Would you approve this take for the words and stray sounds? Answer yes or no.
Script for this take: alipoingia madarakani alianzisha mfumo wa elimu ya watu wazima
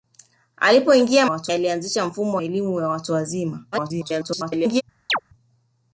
no